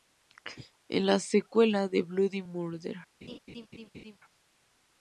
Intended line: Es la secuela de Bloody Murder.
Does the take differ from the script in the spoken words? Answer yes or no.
no